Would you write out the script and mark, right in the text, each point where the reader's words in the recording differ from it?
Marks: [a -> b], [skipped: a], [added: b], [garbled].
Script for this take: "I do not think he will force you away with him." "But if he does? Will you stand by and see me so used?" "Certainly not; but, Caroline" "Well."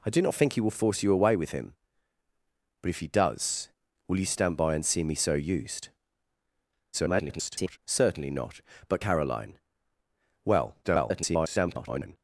"I do not think he will force you away with him." "But if he does? Will you stand by and see me so used?" [garbled] "Certainly not; but, Caroline" "Well." [garbled]